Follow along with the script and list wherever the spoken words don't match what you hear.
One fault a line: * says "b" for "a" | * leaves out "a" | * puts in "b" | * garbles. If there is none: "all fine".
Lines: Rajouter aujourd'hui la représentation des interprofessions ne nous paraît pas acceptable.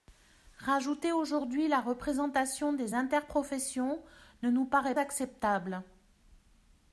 * leaves out "pas"